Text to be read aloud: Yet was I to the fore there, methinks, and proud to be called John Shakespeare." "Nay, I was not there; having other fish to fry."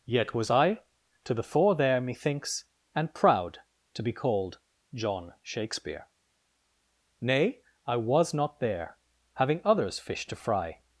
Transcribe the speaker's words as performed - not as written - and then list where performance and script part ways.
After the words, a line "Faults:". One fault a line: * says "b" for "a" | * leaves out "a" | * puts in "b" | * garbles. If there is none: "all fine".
Yet was I to the fore there, methinks, and proud to be called John Shakespeare." "Nay, I was not there; having others fish to fry."
Faults:
* says "others" for "other"